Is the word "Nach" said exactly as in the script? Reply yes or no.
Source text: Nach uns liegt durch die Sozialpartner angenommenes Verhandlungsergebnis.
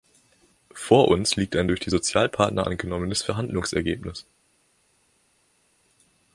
no